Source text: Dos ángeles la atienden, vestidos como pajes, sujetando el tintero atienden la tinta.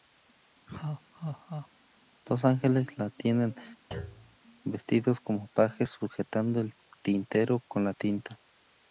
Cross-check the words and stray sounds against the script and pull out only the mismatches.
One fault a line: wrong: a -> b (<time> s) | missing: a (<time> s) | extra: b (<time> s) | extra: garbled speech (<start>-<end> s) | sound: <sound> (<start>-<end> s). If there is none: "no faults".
sound: laugh (0.7-1.7 s)
sound: thud (3.9-4.4 s)
wrong: atienden -> con (7.7 s)